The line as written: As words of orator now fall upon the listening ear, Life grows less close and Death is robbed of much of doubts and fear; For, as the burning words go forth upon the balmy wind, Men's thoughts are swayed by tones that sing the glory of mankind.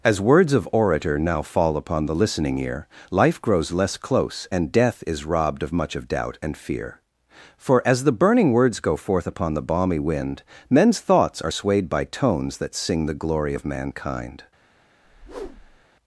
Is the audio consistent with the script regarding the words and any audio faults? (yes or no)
no